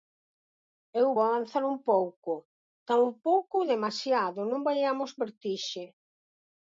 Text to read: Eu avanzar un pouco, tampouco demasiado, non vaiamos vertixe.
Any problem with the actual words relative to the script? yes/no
no